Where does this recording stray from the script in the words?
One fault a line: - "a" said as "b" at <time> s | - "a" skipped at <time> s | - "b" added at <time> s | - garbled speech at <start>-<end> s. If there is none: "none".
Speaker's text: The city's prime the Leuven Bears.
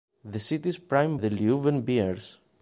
none